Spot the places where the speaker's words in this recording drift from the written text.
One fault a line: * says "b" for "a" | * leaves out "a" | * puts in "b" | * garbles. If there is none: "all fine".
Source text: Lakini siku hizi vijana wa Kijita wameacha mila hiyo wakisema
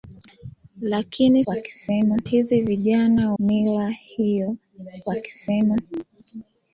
* says "wakisema" for "siku"
* leaves out "wa Kijita wameacha"